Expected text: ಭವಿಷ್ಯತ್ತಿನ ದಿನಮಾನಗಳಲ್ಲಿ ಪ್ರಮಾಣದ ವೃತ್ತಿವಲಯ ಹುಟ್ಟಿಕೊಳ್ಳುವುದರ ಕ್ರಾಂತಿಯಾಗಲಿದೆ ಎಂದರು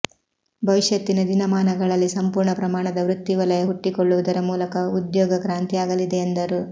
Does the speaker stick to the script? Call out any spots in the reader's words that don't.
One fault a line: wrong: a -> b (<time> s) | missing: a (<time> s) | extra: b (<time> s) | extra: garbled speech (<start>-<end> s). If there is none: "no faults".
extra: ಸಂಪೂರ್ಣ (2.1 s)
extra: ಮೂಲಕ ಉದ್ಯೋಗ (4.4 s)